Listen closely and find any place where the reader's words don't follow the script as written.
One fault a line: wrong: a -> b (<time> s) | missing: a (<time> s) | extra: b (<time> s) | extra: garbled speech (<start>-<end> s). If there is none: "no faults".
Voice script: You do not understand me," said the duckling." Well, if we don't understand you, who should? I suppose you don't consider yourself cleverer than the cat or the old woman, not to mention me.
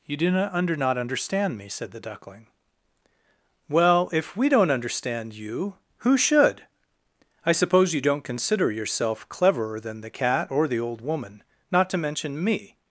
extra: under not (0.5 s)